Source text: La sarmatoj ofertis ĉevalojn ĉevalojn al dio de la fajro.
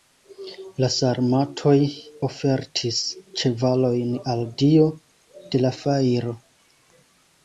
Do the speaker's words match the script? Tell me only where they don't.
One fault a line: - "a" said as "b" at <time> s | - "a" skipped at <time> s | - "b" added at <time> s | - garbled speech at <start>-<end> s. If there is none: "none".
- "ĉevalojn" skipped at 4.1 s